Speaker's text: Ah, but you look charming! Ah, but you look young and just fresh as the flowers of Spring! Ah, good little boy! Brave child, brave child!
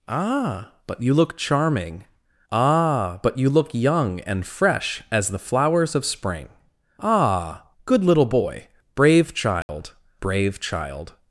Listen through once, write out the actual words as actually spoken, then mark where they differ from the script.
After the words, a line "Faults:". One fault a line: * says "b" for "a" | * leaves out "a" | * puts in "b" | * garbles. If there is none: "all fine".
Ah, but you look charming! Ah, but you look young and fresh as the flowers of Spring! Ah, good little boy! Brave child, brave child!
Faults:
* leaves out "just"